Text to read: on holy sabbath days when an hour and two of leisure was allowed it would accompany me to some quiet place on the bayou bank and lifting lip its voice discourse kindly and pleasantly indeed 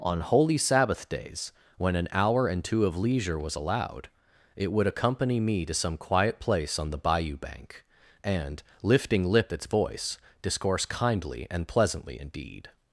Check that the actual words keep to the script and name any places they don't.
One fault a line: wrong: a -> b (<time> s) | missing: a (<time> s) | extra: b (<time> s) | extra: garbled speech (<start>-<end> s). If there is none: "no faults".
no faults